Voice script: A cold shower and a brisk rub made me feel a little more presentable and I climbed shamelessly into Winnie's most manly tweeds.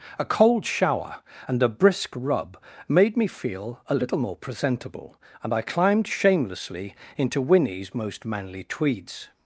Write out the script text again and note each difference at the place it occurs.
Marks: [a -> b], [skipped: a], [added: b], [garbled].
A cold shower and a brisk rub made me feel a little more presentable and I climbed shamelessly into Winnie's most manly tweeds.